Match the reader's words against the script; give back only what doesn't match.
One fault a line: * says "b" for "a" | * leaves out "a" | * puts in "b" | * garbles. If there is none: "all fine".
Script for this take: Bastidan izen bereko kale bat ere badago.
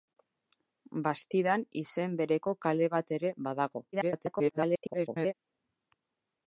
* garbles